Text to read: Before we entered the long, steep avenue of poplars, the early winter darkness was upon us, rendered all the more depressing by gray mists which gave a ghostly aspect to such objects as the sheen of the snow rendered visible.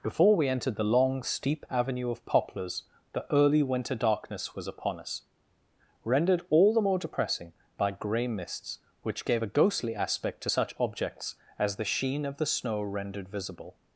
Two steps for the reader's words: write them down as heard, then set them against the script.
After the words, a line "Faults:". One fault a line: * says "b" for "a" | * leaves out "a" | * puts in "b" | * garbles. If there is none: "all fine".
Before we entered the long, steep avenue of poplars, the early winter darkness was upon us, rendered all the more depressing by gray mists which gave a ghostly aspect to such objects as the sheen of the snow rendered visible.
Faults:
all fine